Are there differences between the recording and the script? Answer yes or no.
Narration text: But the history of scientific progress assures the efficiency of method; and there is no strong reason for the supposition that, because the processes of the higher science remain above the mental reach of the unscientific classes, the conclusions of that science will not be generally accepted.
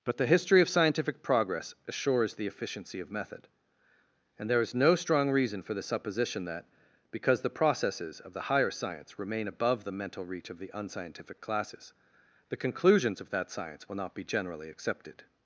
no